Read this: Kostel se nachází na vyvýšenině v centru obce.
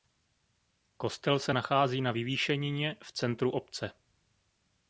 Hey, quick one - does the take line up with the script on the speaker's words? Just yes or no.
yes